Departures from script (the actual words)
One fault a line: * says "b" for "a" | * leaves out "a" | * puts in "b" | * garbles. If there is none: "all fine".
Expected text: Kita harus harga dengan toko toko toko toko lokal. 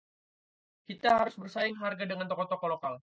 * puts in "bersaing"
* leaves out "toko toko"